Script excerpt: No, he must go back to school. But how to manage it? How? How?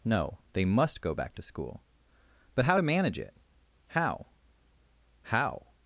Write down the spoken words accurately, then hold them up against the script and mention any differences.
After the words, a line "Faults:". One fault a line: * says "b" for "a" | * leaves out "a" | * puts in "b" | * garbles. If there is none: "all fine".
No, they must go back to school. But how to manage it? How? How?
Faults:
* says "they" for "he"